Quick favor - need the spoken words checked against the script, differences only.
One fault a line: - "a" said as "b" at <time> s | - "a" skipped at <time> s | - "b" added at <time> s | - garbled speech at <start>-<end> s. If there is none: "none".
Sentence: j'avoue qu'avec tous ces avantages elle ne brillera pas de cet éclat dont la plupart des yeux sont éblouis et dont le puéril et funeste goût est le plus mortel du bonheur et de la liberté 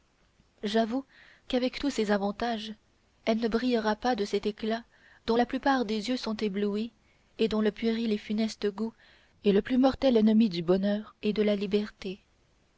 - "ennemi" added at 10.2 s